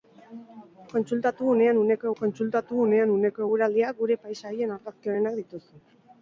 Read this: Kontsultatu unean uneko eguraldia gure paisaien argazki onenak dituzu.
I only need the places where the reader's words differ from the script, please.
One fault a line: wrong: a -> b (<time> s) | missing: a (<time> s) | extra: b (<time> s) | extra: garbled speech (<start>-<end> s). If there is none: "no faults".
extra: kontsultatu unean uneko (2.2 s)